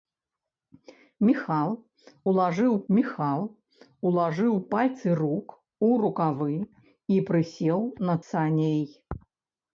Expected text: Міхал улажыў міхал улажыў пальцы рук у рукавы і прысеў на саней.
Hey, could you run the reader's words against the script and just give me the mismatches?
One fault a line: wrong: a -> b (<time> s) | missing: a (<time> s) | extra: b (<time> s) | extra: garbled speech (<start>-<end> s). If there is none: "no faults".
no faults